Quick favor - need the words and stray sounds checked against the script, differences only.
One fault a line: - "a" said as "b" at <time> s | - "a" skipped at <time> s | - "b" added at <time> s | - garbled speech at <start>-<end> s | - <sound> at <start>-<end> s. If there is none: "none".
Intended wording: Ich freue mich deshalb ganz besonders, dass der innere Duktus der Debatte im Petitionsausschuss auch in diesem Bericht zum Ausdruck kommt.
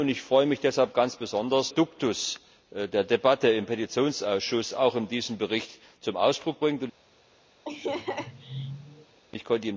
- "dass der innere" skipped at 1.7 s
- laugh at 7.6-9.2 s